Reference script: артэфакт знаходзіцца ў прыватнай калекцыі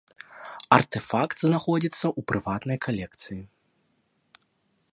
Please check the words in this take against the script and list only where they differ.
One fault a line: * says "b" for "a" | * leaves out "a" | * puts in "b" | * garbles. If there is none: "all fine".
all fine